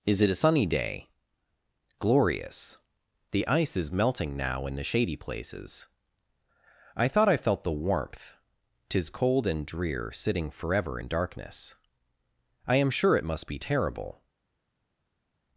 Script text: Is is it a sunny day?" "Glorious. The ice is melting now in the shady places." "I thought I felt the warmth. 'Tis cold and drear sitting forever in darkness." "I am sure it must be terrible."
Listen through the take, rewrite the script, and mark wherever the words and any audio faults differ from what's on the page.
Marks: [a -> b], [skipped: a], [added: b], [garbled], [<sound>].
Is [skipped: is] it a sunny day?" "Glorious. The ice is melting now in the shady places." "I thought I felt the warmth. 'Tis cold and drear sitting forever in darkness." "I am sure it must be terrible."